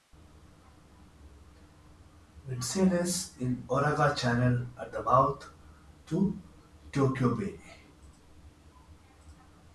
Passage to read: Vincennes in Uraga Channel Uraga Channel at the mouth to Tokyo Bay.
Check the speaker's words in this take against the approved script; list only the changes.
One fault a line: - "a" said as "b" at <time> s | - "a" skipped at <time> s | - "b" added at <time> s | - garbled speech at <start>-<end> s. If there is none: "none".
- "Uraga Channel" skipped at 4.7 s